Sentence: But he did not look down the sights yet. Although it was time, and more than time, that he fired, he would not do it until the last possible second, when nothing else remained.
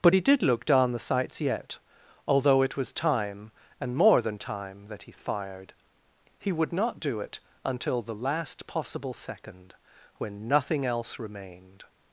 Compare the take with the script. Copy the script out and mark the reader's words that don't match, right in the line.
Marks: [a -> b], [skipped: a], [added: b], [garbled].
But he did [skipped: not] look down the sights yet. Although it was time, and more than time, that he fired, he would not do it until the last possible second, when nothing else remained.